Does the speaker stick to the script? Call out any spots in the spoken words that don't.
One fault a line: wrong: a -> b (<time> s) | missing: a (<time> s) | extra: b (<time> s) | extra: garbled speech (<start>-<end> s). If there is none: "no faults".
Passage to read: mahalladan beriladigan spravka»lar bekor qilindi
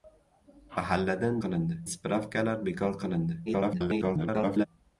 wrong: beriladigan -> qilindi (1.4 s)
extra: garbled speech (3.5-4.7 s)